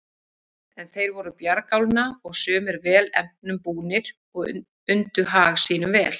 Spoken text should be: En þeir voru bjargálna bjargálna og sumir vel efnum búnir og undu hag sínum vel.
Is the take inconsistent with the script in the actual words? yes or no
yes